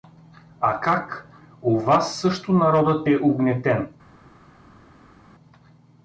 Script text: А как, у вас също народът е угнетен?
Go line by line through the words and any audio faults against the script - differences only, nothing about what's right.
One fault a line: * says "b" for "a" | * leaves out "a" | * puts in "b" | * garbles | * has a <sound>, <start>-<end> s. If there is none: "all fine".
all fine